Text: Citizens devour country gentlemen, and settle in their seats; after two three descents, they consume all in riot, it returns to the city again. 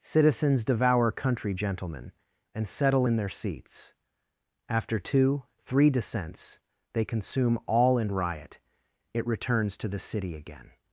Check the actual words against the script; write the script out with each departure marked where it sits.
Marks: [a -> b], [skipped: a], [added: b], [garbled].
Citizens devour country gentlemen, and settle in their seats; after two three descents, they consume all in riot, it returns to the city again.